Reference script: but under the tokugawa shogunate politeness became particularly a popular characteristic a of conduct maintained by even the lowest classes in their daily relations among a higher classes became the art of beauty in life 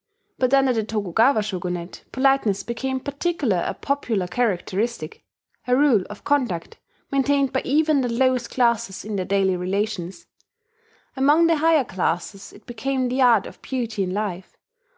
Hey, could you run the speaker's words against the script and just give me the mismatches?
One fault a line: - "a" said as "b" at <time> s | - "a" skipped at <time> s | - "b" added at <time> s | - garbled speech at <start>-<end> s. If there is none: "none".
- "rule" added at 5.8 s
- "a" said as "the" at 11.4 s
- "it" added at 12.5 s